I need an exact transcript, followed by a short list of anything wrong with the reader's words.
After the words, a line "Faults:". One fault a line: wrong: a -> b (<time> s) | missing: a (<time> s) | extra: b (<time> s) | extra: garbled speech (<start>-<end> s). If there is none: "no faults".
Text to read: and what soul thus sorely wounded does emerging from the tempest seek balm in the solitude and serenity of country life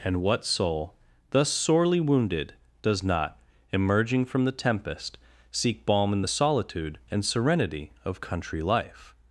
and what soul thus sorely wounded does not emerging from the tempest seek balm in the solitude and serenity of country life
Faults:
extra: not (3.0 s)